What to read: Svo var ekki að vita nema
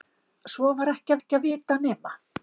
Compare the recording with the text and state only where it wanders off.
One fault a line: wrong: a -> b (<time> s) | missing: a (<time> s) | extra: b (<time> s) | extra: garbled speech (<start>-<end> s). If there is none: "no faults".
extra: ekki (1.2 s)